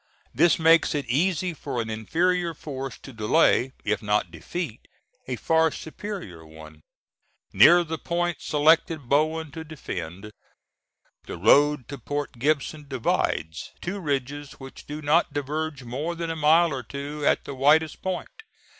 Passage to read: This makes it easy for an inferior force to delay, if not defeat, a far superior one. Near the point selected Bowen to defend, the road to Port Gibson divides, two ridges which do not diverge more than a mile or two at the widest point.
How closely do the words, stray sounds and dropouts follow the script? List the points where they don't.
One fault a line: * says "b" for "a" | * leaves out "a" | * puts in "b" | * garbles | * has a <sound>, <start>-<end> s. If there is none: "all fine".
all fine